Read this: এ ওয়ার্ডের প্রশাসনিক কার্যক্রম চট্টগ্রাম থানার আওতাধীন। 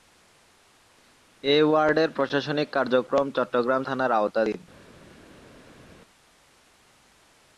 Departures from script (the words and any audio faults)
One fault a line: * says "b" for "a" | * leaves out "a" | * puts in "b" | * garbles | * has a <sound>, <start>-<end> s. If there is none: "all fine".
all fine